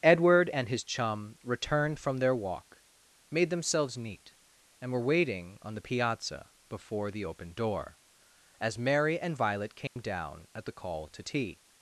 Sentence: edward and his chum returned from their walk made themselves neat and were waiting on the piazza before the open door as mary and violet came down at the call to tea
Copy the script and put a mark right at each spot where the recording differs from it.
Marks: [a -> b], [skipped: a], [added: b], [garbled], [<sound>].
edward and his chum returned from their walk made themselves neat and were waiting on the piazza before the open door as mary and violet came [dropout] down at the call to tea